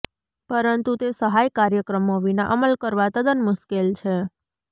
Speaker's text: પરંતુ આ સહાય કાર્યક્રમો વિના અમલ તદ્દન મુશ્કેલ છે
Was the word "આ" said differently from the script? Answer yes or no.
yes